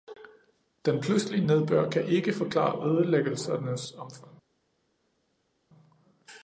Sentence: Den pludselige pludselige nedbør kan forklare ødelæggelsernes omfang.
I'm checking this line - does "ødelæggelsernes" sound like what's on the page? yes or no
yes